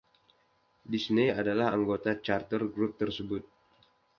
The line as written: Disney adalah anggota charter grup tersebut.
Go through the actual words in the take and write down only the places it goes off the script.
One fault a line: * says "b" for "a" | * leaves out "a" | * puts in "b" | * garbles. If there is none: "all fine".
all fine